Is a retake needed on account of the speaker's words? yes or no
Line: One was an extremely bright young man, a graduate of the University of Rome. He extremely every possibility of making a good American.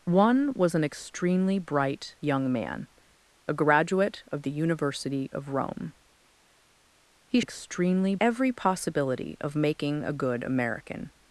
no